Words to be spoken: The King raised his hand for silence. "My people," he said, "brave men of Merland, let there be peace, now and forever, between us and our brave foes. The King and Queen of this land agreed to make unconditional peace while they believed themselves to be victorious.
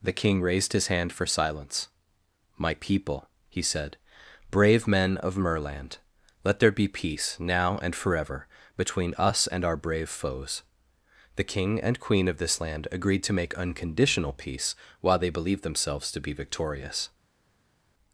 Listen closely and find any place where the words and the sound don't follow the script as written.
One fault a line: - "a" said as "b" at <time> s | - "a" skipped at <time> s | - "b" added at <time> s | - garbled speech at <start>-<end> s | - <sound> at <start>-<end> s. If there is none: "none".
none